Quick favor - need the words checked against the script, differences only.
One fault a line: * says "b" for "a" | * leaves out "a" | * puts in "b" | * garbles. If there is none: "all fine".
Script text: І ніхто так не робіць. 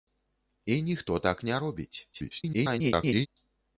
* garbles